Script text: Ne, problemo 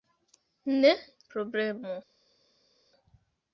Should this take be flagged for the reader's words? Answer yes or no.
no